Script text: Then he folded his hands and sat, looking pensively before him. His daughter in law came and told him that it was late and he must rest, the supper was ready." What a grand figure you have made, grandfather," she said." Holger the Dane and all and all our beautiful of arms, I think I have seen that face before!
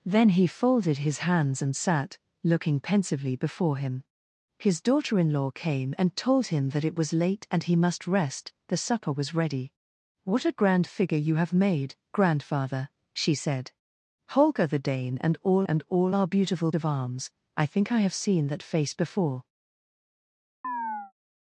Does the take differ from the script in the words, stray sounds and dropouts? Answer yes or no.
yes